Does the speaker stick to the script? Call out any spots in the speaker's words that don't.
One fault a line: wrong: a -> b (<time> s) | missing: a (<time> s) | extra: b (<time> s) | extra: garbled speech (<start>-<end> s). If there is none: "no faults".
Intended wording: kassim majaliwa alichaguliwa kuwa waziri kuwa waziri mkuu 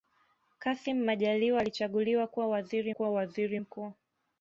no faults